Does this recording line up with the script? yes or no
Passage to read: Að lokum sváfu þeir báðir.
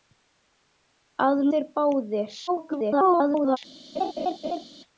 no